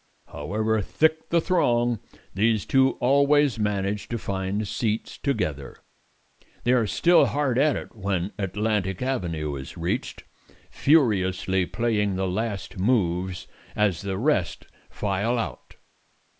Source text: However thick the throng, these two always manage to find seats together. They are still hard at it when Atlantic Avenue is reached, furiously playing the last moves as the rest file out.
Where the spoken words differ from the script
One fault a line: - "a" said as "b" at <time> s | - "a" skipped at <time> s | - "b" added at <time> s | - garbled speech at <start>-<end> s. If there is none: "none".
none